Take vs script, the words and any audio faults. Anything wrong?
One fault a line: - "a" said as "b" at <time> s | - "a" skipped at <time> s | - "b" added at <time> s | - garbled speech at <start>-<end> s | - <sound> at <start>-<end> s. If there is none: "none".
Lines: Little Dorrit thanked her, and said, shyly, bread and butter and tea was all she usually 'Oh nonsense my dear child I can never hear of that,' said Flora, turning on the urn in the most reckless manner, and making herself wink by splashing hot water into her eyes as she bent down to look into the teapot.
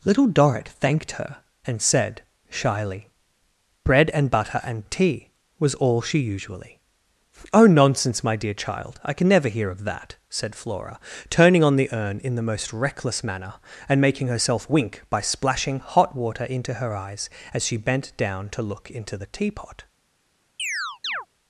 - chirp at 20.6-21.3 s